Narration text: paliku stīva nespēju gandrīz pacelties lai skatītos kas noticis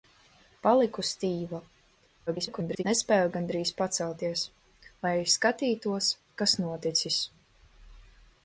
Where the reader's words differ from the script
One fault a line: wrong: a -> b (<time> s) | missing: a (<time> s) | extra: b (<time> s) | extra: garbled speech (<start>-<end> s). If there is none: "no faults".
extra: garbled speech (2.3-2.8 s)